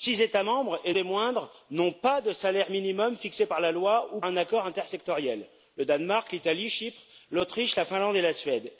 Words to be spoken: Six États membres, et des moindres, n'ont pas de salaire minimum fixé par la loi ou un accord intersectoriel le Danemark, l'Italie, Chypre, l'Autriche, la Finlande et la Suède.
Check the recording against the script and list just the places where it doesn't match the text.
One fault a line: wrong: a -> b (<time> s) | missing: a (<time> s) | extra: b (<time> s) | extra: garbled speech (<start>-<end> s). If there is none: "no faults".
no faults